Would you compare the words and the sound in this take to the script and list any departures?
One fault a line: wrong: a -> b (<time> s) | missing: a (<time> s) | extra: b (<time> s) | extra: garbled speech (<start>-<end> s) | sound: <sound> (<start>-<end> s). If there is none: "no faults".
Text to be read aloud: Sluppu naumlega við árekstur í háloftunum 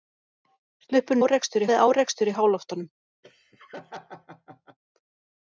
wrong: naumlega -> árekstur (1.2 s)
sound: laugh (3.2-4.8 s)